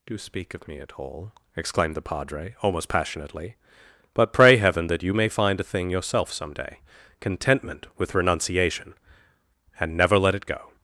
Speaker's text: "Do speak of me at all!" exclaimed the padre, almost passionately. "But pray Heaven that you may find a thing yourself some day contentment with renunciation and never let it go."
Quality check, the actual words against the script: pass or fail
pass